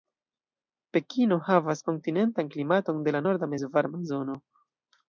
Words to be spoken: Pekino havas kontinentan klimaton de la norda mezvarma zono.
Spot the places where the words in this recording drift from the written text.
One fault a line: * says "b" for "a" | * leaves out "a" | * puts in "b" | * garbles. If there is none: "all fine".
all fine